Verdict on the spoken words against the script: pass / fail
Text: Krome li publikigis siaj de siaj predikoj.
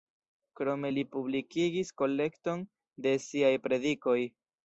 fail